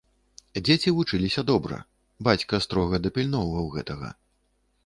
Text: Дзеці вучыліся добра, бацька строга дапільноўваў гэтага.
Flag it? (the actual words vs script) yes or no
no